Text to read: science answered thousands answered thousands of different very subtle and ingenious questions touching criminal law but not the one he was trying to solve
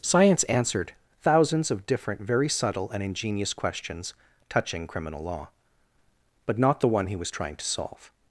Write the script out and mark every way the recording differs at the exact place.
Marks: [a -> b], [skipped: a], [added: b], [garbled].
science answered thousands [skipped: answered thousands] of different very subtle and ingenious questions touching criminal law but not the one he was trying to solve